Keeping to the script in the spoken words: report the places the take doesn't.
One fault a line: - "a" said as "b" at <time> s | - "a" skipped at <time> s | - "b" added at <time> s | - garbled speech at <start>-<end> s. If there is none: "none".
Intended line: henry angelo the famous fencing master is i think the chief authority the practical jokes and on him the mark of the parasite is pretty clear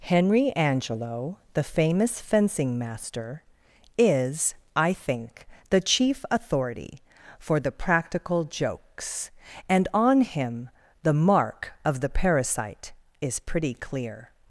- "for" added at 7.4 s